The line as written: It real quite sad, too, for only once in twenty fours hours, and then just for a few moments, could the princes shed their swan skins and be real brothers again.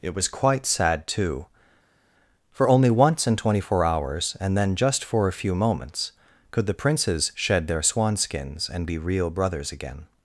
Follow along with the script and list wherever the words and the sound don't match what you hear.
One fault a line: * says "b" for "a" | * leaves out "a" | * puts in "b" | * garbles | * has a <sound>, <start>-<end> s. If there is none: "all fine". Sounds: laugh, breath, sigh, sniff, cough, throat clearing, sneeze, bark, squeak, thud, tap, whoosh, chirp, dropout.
* says "was" for "real"
* says "four" for "fours"